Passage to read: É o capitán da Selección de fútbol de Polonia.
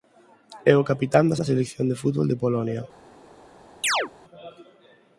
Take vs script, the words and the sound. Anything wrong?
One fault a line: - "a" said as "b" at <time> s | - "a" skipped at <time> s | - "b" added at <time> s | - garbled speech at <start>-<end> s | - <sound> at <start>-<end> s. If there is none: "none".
- "da" added at 1.4 s
- chirp at 3.8-4.1 s